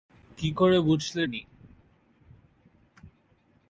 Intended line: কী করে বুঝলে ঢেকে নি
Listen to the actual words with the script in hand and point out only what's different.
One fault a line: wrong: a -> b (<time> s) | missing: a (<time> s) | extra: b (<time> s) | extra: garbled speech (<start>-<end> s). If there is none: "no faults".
missing: ঢেকে (1.2 s)